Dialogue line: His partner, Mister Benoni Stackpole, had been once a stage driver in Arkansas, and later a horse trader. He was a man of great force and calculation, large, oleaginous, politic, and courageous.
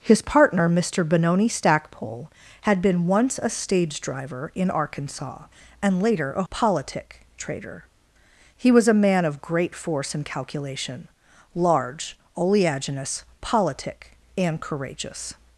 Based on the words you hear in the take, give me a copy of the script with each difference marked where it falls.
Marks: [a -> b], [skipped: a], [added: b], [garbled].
His partner, Mister Benoni Stackpole, had been once a stage driver in Arkansas, and later a [horse -> politic] trader. He was a man of great force and calculation, large, oleaginous, politic, and courageous.